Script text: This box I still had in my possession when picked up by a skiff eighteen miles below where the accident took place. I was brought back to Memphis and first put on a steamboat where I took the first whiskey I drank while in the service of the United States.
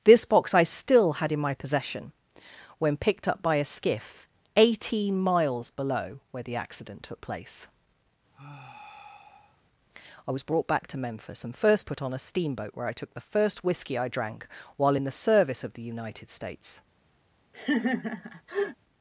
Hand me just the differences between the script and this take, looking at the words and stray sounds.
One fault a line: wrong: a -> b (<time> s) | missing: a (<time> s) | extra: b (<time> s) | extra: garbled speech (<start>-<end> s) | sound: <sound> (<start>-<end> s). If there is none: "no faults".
sound: sigh (8.3-9.6 s)
sound: laugh (17.5-18.8 s)